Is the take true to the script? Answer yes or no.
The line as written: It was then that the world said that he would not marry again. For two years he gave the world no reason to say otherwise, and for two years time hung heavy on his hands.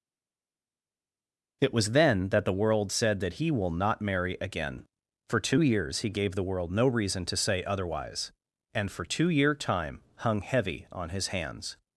no